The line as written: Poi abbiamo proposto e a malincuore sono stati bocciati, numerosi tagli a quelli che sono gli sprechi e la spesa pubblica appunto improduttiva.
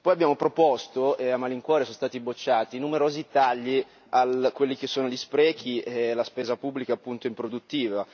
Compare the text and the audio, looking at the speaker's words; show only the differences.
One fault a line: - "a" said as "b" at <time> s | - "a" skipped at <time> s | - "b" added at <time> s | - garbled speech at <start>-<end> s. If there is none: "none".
none